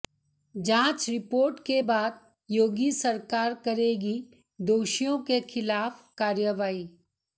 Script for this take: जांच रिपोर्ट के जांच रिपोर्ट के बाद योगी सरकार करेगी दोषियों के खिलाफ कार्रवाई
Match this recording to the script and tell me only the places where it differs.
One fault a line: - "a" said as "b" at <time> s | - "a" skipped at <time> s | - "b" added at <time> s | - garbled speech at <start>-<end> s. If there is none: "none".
- "जांच रिपोर्ट के" skipped at 1.8 s